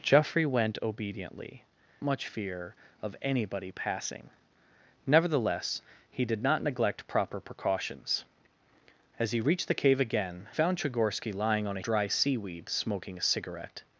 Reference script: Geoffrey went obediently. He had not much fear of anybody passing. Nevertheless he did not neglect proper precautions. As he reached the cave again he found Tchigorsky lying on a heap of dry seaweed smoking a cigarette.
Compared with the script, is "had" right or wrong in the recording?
wrong